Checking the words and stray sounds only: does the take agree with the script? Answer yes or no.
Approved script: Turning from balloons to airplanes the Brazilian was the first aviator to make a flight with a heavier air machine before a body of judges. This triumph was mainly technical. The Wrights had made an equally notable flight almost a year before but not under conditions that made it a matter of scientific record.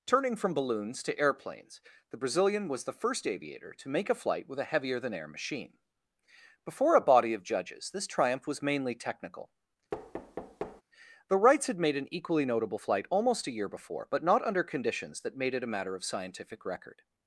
no